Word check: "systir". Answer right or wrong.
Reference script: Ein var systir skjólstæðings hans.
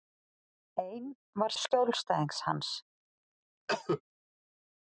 wrong